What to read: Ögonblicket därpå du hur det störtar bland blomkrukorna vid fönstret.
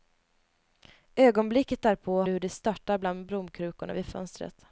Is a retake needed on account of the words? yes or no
no